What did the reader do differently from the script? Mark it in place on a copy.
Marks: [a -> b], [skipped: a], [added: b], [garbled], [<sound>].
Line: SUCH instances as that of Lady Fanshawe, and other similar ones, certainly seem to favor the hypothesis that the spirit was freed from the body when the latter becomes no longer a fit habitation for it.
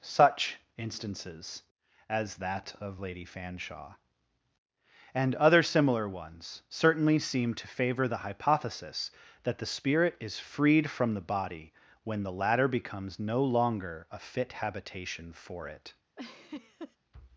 SUCH instances as that of Lady Fanshawe, and other similar ones, certainly seem to favor the hypothesis that the spirit [was -> is] freed from the body when the latter becomes no longer a fit habitation for it. [laugh]